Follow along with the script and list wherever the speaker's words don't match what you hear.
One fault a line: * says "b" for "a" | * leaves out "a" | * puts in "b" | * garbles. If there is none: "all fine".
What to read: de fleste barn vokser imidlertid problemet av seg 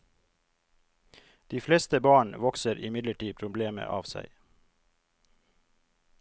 all fine